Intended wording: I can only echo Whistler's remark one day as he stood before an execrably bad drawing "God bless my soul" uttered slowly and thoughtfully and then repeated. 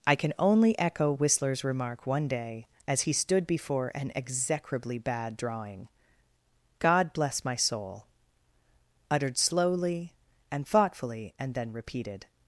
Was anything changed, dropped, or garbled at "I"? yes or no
no